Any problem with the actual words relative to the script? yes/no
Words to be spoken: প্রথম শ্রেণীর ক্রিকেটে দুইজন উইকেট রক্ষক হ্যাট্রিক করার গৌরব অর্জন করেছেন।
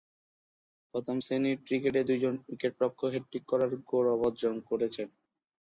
no